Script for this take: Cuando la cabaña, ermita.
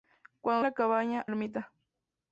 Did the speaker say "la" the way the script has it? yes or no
yes